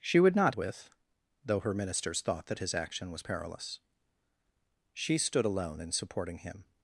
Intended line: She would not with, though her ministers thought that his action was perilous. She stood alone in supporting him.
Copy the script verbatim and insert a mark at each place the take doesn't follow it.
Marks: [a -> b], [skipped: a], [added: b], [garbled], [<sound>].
She would not with, though her ministers thought that his action was perilous. She stood alone in supporting him.